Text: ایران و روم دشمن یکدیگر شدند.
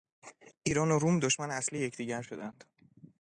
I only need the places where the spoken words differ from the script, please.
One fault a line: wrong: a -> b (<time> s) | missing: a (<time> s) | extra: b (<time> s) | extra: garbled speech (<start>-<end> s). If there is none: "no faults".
extra: اصلی (1.5 s)